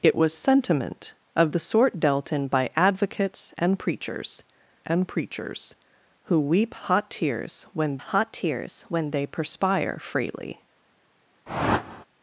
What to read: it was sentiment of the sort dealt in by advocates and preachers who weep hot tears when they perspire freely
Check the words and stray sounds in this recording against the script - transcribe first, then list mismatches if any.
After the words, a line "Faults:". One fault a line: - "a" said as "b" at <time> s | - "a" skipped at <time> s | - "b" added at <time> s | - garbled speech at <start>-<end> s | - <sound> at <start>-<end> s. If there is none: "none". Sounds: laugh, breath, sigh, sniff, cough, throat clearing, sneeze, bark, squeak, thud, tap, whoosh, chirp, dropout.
it was sentiment of the sort dealt in by advocates and preachers and preachers who weep hot tears when hot tears when they perspire freely
Faults:
- "and preachers" added at 4.9 s
- "hot tears when" added at 8.0 s
- whoosh at 11.5-12.0 s